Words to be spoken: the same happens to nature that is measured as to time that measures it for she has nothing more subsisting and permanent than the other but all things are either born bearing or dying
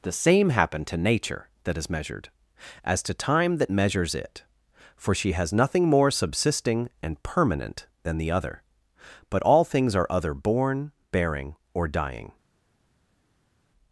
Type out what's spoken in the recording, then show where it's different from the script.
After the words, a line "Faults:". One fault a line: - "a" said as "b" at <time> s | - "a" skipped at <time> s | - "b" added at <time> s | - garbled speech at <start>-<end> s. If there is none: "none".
the same happen to nature that is measured as to time that measures it for she has nothing more subsisting and permanent than the other but all things are other born bearing or dying
Faults:
- "happens" said as "happen" at 0.5 s
- "either" said as "other" at 10.1 s